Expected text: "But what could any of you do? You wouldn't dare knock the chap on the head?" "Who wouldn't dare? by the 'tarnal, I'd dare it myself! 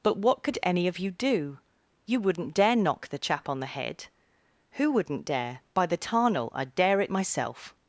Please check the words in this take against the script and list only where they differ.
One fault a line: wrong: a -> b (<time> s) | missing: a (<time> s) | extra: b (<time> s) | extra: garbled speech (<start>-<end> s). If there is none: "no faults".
no faults